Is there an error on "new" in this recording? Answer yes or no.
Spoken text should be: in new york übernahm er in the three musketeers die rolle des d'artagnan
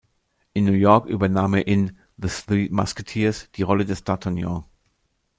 no